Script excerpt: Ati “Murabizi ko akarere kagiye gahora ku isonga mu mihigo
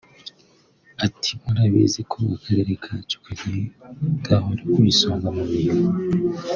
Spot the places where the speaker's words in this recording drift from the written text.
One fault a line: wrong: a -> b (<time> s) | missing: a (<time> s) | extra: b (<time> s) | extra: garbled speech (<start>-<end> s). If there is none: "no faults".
extra: kacu (2.8 s)